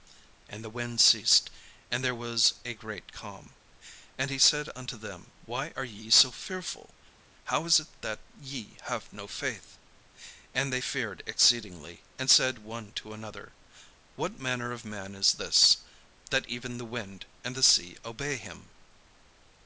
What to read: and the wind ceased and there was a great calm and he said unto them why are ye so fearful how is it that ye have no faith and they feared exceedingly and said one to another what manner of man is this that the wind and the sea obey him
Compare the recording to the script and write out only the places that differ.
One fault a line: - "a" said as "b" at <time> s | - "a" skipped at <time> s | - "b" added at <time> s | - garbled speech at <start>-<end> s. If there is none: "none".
- "even" added at 16.5 s